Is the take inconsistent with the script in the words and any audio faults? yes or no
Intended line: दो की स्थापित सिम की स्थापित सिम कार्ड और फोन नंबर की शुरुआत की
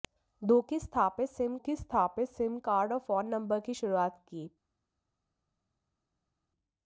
no